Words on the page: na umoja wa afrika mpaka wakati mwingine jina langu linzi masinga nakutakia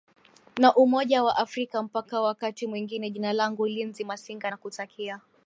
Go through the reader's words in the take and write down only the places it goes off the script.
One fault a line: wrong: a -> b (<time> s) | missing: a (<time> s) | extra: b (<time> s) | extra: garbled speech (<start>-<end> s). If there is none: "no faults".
no faults